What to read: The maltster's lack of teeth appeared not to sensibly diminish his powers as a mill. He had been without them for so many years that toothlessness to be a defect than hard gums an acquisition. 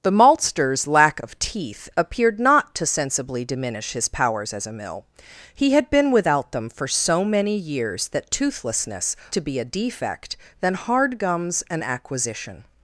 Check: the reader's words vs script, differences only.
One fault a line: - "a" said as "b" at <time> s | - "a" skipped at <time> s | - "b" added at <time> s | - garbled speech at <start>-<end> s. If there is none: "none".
none